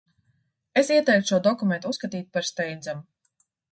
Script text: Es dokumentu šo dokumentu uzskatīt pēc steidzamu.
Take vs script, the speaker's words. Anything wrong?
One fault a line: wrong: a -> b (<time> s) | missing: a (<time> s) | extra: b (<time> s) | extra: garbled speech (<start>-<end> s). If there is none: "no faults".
wrong: dokumentu -> ieteiktu (0.9 s)
wrong: pēc -> par (2.4 s)